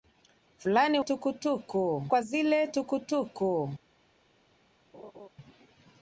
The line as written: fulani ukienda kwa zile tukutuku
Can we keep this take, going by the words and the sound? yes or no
no